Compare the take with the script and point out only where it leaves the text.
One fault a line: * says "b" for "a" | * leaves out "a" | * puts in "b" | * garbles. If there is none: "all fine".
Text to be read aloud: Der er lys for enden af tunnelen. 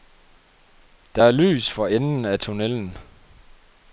all fine